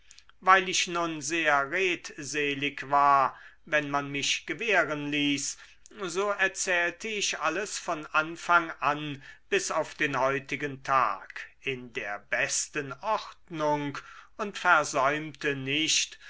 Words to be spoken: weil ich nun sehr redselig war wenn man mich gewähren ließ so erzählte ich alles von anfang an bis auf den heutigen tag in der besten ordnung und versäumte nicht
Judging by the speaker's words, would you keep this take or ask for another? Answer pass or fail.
pass